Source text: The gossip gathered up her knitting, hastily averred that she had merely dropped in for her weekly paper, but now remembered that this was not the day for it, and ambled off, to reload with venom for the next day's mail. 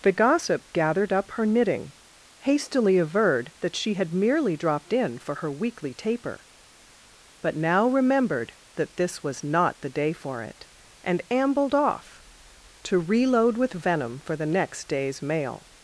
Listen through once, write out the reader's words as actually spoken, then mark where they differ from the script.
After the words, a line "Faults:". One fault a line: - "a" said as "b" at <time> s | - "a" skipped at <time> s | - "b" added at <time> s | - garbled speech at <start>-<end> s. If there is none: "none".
The gossip gathered up her knitting, hastily averred that she had merely dropped in for her weekly taper, but now remembered that this was not the day for it, and ambled off, to reload with venom for the next day's mail.
Faults:
- "paper" said as "taper" at 5.9 s